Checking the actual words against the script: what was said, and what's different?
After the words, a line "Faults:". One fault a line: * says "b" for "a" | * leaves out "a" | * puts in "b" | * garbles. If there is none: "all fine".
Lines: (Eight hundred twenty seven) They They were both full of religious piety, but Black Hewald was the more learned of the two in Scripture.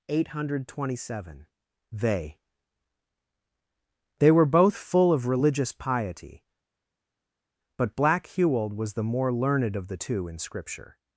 (Eight hundred twenty seven) They They were both full of religious piety, but Black Hewald was the more learned of the two in Scripture.
Faults:
all fine